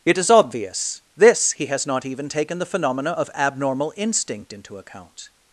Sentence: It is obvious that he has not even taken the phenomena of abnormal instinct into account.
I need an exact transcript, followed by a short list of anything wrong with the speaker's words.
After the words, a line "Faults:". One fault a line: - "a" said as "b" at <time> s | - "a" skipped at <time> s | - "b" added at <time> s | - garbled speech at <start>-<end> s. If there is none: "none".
It is obvious this he has not even taken the phenomena of abnormal instinct into account.
Faults:
- "that" said as "this" at 1.2 s